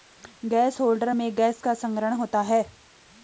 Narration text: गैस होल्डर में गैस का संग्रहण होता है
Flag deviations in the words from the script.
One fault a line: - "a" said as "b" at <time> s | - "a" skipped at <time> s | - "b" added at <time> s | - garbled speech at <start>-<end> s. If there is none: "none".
none